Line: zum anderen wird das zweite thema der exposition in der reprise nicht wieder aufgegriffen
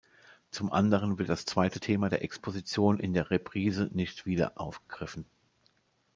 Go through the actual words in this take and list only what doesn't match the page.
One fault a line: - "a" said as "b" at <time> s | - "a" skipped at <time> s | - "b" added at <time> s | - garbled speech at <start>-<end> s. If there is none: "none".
none